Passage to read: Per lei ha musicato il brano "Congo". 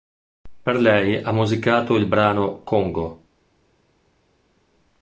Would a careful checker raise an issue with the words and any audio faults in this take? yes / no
no